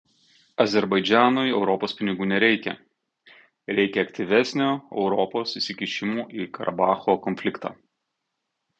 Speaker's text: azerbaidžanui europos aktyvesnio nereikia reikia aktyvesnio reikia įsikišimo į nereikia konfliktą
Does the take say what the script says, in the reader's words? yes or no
no